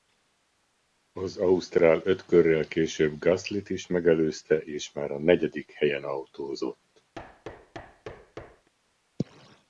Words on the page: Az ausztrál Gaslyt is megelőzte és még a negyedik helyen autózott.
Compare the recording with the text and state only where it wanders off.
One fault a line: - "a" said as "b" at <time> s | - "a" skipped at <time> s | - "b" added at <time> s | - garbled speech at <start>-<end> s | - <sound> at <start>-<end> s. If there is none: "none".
- "öt körrel később" added at 2.0 s
- "még" said as "már" at 4.9 s
- thud at 7.1-8.7 s